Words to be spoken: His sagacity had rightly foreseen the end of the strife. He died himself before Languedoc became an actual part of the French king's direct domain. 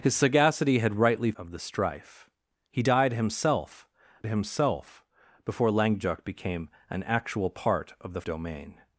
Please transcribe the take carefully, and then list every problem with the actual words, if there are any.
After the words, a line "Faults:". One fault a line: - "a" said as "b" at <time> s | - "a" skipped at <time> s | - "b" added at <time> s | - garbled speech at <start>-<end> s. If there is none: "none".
His sagacity had rightly of the strife. He died himself himself before Languedoc became an actual part of the Domain.
Faults:
- "foreseen the end" skipped at 1.3 s
- "himself" added at 4.3 s
- "French king's direct" skipped at 8.2 s